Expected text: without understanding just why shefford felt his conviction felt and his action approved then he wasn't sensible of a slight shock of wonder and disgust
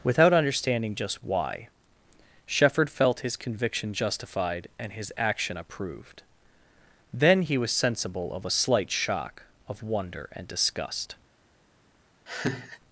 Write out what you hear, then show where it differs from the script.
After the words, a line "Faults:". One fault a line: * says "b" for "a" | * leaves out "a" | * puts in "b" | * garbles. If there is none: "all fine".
without understanding just why shefford felt his conviction justified and his action approved then he was sensible of a slight shock of wonder and disgust
Faults:
* says "justified" for "felt"
* says "was" for "wasn't"